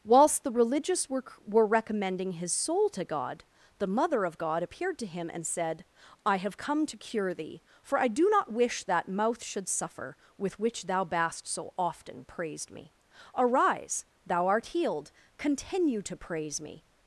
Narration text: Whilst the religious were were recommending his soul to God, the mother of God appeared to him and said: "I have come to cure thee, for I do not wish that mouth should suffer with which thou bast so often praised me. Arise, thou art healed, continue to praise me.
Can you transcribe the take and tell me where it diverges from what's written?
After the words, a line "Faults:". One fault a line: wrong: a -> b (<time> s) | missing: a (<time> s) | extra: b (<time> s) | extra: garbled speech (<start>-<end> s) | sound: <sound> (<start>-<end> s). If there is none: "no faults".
Whilst the religious were were recommending his soul to God, the mother of God appeared to him and said: "I have come to cure thee, for I do not wish that mouth should suffer with which thou bast so often praised me. Arise, thou art healed, continue to praise me.
Faults:
no faults